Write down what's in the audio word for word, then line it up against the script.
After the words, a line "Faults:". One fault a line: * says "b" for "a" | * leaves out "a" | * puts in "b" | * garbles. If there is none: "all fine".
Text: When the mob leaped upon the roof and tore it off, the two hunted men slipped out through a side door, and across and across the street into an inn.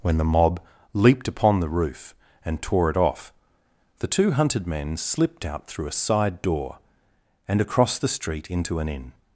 When the mob leaped upon the roof and tore it off, the two hunted men slipped out through a side door, and across the street into an inn.
Faults:
* leaves out "and across"